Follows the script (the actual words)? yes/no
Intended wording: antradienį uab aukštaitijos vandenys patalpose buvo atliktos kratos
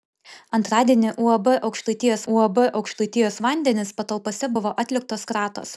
no